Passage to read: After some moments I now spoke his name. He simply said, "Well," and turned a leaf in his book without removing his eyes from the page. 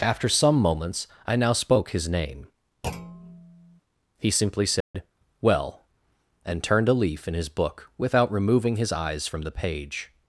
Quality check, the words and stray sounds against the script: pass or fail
fail